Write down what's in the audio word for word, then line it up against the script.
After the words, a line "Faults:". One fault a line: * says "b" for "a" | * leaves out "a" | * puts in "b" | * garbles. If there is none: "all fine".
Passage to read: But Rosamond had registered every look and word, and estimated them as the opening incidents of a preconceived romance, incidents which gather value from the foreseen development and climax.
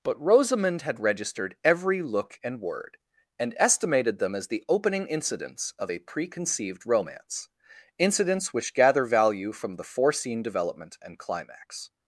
But Rosamond had registered every look and word, and estimated them as the opening incidents of a preconceived romance, incidents which gather value from the foreseen development and climax.
Faults:
all fine